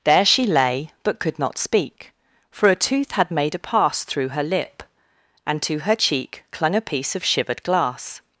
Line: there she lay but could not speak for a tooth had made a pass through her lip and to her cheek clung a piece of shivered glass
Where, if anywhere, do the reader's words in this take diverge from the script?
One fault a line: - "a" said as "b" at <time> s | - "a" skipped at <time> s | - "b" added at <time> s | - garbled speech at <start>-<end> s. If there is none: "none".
none